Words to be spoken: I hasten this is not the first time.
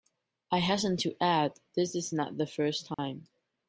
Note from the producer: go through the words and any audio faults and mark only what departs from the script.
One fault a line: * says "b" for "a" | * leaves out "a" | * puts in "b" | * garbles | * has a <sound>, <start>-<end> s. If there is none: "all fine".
* puts in "to add"
* has a dropout, 2.9-3.0 s